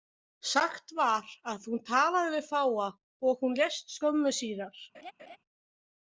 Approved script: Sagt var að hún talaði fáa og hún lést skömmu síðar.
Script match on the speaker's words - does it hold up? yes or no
no